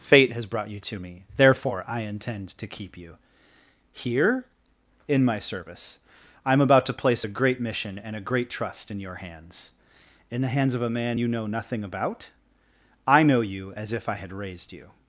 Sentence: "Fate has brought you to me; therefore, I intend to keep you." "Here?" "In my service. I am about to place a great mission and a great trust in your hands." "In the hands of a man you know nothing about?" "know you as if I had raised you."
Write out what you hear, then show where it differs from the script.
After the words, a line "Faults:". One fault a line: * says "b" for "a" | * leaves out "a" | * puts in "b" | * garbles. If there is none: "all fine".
"Fate has brought you to me; therefore, I intend to keep you." "Here?" "In my service. I am about to place a great mission and a great trust in your hands." "In the hands of a man you know nothing about?" "I know you as if I had raised you."
Faults:
* puts in "I"